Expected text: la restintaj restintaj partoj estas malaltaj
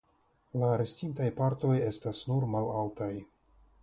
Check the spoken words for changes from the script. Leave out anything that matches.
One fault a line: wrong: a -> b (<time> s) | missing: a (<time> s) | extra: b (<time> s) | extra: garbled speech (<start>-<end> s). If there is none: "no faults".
missing: restintaj (1.3 s)
extra: nur (2.3 s)